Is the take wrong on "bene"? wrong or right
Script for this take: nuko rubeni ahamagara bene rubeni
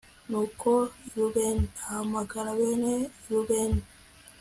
right